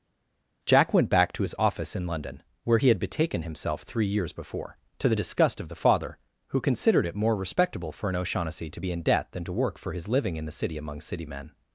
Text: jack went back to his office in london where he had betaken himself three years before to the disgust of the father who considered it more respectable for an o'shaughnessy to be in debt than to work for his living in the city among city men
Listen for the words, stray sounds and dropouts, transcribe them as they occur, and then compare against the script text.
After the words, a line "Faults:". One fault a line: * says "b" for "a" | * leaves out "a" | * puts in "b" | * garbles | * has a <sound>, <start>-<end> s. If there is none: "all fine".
jack went back to his office in london where he had betaken himself three years before to the disgust of the father who considered it more respectable for an o'shaughnessy to be in debt than to work for his living in the city among city men
Faults:
all fine